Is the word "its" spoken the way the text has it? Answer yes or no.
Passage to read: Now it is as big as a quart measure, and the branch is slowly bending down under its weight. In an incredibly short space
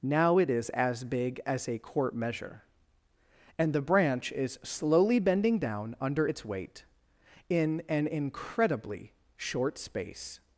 yes